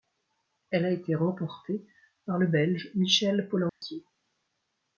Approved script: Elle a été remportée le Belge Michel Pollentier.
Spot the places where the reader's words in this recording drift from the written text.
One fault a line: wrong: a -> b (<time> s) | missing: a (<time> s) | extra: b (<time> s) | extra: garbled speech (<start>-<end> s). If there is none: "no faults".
extra: par (2.3 s)